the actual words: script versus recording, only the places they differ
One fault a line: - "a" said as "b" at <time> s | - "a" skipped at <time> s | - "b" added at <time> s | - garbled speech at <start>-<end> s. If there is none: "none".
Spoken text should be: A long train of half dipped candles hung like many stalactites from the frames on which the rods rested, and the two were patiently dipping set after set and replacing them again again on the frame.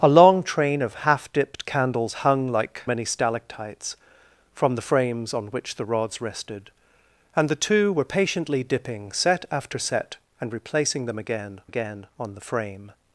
none